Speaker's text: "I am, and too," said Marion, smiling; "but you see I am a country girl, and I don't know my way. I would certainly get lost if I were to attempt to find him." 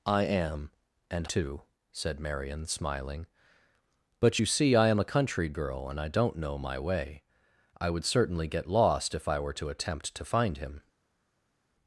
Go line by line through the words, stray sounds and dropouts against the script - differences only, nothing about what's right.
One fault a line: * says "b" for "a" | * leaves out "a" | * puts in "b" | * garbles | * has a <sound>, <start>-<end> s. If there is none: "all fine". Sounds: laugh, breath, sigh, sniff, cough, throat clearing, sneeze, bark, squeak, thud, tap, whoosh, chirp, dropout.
all fine